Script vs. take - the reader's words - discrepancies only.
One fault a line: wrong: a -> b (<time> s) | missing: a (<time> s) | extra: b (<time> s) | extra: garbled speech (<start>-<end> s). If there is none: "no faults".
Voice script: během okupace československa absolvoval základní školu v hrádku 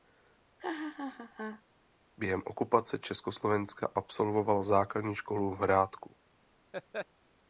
no faults